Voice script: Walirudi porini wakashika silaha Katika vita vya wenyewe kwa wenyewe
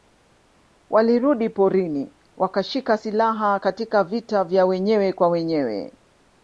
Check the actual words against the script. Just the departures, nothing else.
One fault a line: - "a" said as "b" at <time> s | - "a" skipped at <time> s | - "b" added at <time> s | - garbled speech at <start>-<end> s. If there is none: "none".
none